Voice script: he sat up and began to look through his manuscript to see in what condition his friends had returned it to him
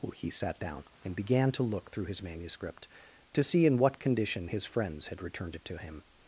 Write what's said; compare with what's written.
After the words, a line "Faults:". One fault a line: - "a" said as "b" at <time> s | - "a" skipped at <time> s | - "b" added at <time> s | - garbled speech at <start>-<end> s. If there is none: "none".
he sat down and began to look through his manuscript to see in what condition his friends had returned it to him
Faults:
- "up" said as "down" at 0.6 s